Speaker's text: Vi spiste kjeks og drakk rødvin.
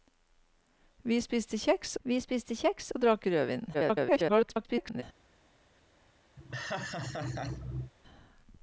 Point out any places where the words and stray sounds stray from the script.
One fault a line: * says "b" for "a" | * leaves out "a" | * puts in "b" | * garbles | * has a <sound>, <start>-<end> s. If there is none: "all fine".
* puts in "vi spiste kjeks"
* garbles
* has a laugh, 6.4-7.9 s